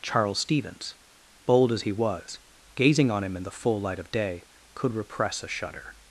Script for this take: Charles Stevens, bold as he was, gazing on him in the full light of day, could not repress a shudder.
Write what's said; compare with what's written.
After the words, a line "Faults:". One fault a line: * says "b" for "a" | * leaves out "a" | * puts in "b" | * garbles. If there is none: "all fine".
Charles Stevens, bold as he was, gazing on him in the full light of day, could repress a shudder.
Faults:
* leaves out "not"